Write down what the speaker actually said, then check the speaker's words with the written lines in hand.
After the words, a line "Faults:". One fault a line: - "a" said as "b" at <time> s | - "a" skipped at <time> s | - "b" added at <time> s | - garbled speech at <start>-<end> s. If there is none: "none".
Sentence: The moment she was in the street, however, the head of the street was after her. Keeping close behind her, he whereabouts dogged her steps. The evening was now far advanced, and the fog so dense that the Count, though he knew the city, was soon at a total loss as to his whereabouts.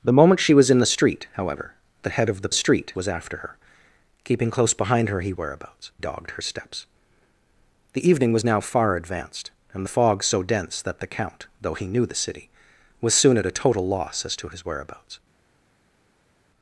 The moment she was in the street, however, the head of the street was after her. Keeping close behind her, he whereabouts dogged her steps. The evening was now far advanced, and the fog so dense that the Count, though he knew the city, was soon at a total loss as to his whereabouts.
Faults:
none